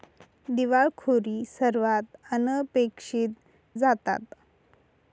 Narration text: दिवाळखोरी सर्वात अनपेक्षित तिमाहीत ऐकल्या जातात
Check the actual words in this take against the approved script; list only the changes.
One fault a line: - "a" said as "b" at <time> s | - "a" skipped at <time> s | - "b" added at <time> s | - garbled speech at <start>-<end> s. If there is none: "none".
- "तिमाहीत ऐकल्या" skipped at 3.3 s